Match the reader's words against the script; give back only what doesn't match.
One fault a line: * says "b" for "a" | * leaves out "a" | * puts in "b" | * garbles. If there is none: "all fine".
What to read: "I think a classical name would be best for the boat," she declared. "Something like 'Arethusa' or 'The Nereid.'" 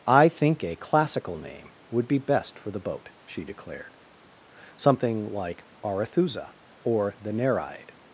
all fine